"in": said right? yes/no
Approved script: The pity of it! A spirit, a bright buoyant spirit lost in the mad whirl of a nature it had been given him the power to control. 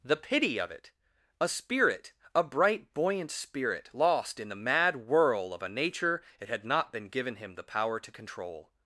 yes